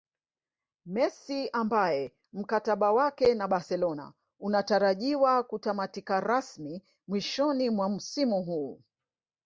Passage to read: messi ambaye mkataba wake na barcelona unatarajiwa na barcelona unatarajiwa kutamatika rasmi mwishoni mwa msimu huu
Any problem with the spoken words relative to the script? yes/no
yes